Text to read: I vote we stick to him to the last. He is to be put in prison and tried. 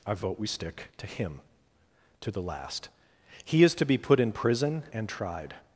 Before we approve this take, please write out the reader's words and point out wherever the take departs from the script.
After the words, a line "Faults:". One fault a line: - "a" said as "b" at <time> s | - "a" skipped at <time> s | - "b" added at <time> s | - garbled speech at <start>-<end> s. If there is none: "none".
I vote we stick to him to the last. He is to be put in prison and tried.
Faults:
none